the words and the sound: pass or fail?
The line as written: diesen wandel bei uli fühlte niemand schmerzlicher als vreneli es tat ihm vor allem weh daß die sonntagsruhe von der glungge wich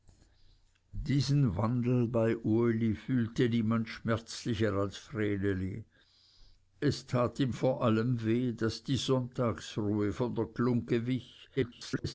fail